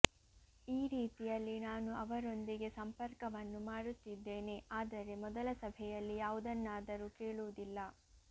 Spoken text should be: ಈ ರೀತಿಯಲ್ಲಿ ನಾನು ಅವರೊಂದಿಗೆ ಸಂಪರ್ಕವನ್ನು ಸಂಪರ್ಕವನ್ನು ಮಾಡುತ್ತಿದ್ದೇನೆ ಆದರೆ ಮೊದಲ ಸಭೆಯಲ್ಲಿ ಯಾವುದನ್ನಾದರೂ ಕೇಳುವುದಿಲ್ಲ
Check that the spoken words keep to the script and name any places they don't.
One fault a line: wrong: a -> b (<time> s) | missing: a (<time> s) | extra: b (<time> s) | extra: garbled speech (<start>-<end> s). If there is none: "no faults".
missing: ಸಂಪರ್ಕವನ್ನು (3.6 s)